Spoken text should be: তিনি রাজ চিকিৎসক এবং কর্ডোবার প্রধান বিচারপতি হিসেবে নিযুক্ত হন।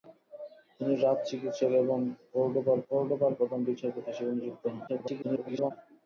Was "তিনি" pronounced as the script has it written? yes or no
yes